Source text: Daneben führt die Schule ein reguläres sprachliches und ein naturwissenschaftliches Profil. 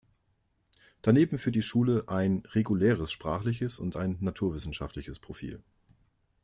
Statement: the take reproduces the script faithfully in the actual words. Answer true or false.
true